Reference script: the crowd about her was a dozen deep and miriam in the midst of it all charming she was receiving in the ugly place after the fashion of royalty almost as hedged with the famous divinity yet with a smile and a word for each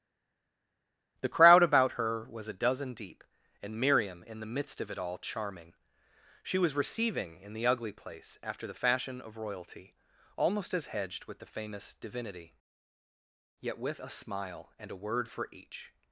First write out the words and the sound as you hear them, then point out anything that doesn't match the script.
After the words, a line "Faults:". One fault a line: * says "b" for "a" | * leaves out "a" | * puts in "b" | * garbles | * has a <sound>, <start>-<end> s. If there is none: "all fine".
the crowd about her was a dozen deep and miriam in the midst of it all charming she was receiving in the ugly place after the fashion of royalty almost as hedged with the famous divinity yet with a smile and a word for each
Faults:
all fine